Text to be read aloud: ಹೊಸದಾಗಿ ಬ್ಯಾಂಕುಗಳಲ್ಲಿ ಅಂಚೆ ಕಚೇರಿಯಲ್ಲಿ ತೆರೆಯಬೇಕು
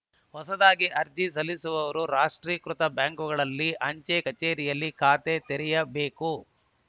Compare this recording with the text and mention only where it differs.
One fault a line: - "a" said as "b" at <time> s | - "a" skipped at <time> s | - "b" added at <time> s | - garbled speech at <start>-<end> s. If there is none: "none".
- "ಅರ್ಜಿ ಸಲ್ಲಿಸುವವರು ರಾಷ್ಟ್ರೀಕೃತ" added at 1.0 s
- "ಖಾತೆ" added at 5.0 s